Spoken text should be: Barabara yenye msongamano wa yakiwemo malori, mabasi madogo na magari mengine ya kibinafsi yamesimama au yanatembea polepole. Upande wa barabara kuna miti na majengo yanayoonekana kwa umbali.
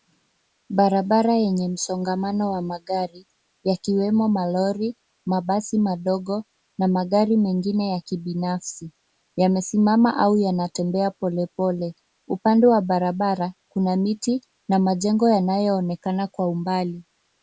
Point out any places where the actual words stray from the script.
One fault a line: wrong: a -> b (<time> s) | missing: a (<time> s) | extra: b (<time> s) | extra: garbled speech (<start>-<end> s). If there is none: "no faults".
extra: magari (2.6 s)